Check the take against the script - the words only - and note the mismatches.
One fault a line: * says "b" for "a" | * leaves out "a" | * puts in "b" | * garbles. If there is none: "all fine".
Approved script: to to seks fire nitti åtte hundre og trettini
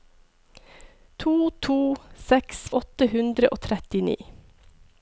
* leaves out "fire nitti"